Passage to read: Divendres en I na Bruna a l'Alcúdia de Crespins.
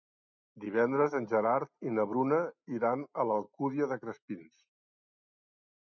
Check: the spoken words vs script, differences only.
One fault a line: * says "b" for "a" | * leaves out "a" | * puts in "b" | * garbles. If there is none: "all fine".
* puts in "Gerard"
* puts in "iran"